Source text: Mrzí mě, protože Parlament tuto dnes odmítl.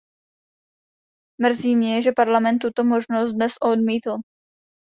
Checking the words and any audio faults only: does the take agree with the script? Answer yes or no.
no